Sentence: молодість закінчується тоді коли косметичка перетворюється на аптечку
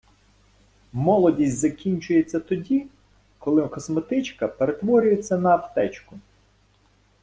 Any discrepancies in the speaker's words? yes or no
no